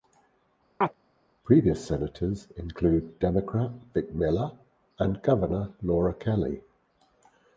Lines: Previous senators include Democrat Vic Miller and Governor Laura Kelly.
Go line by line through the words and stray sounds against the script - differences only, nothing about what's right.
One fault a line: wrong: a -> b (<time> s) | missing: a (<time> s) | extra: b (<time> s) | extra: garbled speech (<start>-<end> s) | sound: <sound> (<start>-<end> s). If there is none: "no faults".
sound: chirp (0.8-0.9 s)